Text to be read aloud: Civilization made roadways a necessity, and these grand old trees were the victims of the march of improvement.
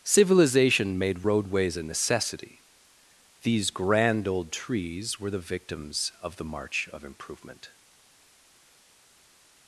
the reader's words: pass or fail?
fail